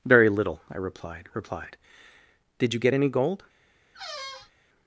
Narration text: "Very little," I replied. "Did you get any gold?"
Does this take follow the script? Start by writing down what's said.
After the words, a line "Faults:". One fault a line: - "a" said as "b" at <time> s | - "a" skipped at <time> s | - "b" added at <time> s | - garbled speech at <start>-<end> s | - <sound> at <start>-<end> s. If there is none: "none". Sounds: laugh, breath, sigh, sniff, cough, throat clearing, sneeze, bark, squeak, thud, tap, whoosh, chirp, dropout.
"Very little," I replied replied. "Did you get any gold?"
Faults:
- "replied" added at 1.4 s
- squeak at 3.9-4.5 s